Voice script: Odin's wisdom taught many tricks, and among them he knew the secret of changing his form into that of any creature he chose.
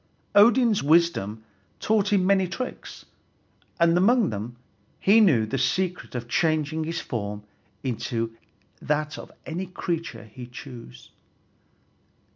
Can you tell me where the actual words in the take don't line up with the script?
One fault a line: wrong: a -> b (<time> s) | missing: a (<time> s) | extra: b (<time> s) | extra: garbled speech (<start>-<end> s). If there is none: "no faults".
extra: him (2.1 s)